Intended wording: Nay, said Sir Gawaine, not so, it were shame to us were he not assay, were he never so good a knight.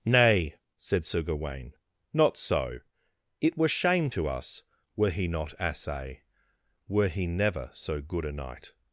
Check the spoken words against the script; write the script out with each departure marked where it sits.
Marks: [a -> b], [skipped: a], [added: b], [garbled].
Nay, said Sir Gawaine, not so, it were shame to us were he not assay, were he never so good a knight.